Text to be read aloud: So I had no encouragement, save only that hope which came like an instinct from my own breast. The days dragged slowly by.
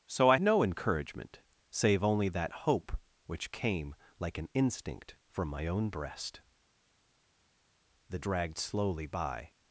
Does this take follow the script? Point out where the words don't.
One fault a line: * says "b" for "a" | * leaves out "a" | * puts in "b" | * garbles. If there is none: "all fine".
* leaves out "had"
* leaves out "days"